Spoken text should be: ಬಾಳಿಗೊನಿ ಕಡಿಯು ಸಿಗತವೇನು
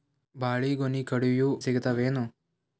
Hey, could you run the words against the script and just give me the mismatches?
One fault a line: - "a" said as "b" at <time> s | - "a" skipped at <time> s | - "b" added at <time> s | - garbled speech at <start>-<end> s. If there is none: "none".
none